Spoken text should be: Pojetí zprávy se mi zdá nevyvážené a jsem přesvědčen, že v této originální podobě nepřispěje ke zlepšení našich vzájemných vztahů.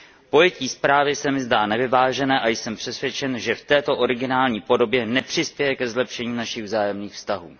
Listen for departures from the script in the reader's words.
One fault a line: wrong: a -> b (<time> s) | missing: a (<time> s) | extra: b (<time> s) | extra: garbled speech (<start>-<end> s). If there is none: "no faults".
no faults